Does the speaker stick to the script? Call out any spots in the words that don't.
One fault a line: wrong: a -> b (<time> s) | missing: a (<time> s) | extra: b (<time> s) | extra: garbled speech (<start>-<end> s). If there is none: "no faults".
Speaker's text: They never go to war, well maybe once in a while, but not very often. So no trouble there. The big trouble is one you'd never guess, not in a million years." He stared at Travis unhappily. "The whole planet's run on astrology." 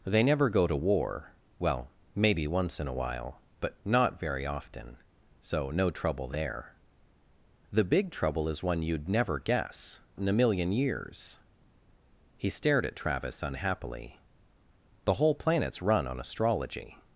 missing: not (10.0 s)